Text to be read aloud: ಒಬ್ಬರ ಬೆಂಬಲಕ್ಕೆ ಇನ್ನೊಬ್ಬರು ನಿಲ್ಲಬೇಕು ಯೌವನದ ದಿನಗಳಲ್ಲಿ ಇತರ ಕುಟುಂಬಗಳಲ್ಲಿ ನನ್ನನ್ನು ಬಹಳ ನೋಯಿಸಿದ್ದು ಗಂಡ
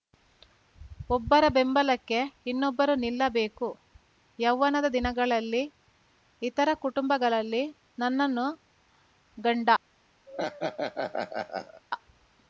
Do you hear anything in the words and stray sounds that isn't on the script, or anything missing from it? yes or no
yes